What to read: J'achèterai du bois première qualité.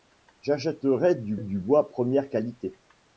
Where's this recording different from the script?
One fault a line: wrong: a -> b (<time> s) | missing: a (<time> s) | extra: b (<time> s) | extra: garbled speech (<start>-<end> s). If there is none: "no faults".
extra: du (1.4 s)